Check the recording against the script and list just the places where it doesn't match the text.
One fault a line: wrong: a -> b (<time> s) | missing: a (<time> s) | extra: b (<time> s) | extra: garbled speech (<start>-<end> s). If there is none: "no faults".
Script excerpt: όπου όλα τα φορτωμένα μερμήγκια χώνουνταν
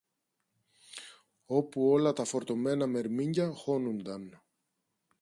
no faults